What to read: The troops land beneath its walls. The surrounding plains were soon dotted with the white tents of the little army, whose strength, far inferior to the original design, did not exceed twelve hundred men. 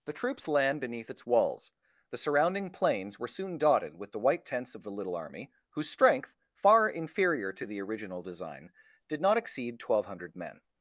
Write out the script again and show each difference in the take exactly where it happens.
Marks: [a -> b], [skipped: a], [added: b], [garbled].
The troops land beneath its walls. The surrounding plains were soon dotted with the white tents of the little army, whose strength, far inferior to the original design, did not exceed twelve hundred men.